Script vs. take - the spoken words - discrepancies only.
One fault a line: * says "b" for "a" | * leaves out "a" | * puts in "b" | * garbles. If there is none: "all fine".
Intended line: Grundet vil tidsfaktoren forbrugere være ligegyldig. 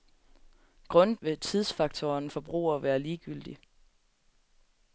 all fine